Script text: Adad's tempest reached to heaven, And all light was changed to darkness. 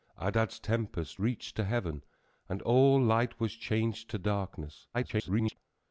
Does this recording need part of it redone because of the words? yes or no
yes